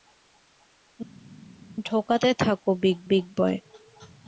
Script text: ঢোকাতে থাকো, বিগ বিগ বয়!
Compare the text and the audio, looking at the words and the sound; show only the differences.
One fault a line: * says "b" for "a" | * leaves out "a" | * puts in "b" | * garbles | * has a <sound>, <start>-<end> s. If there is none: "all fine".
all fine